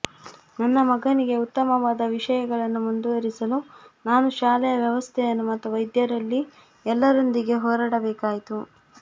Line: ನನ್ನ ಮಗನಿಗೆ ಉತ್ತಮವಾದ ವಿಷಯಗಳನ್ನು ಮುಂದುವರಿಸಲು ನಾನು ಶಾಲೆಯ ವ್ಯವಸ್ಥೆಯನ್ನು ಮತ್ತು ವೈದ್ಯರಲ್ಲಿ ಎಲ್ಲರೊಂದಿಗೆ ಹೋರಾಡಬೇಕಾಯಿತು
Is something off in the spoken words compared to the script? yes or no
no